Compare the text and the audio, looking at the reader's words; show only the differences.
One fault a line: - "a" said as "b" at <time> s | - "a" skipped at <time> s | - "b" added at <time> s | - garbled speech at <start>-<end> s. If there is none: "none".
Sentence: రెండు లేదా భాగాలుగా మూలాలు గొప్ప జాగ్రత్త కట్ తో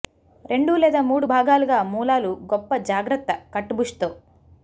- "మూడు" added at 1.0 s
- "బుష్" added at 3.7 s